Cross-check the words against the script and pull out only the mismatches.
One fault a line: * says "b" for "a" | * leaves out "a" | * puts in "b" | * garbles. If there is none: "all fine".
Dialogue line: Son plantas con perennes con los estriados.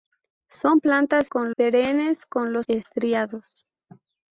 all fine